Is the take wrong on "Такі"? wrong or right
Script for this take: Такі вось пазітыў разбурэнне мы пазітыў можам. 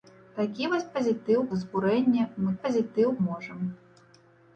right